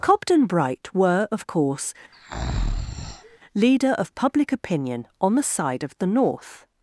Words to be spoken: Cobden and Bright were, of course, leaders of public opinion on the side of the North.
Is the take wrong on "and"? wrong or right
wrong